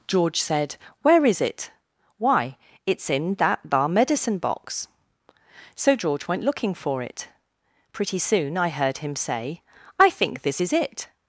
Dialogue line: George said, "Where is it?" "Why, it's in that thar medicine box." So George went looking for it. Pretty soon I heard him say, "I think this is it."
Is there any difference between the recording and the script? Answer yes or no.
no